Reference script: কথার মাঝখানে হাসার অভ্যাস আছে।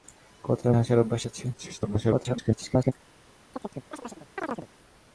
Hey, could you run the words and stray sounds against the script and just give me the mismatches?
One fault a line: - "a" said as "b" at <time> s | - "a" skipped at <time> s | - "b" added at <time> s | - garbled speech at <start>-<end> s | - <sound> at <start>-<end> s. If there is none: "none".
- "মাঝখানে" skipped at 0.7 s
- garbled speech at 1.5-2.9 s
- chirp at 3.5-4.7 s